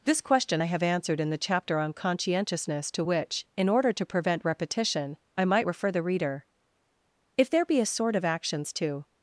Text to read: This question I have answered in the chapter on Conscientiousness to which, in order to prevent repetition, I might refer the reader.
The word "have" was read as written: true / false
true